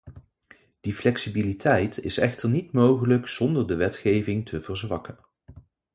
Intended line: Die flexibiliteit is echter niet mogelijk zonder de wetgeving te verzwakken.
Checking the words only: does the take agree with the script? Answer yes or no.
yes